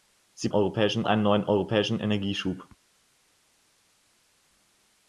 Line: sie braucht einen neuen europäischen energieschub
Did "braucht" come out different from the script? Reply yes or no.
yes